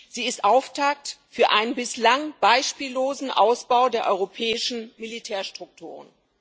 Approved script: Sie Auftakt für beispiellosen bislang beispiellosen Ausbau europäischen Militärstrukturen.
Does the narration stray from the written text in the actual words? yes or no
yes